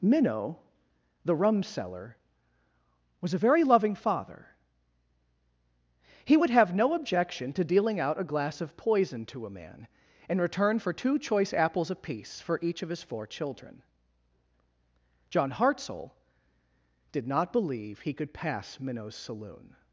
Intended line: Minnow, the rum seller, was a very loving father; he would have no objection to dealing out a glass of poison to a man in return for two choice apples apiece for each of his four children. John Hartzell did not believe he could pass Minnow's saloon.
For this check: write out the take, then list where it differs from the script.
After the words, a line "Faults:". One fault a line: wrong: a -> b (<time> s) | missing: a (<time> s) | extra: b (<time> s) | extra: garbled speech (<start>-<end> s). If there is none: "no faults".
Minnow, the rum seller, was a very loving father; he would have no objection to dealing out a glass of poison to a man in return for two choice apples apiece for each of his four children. John Hartzell did not believe he could pass Minnow's saloon.
Faults:
no faults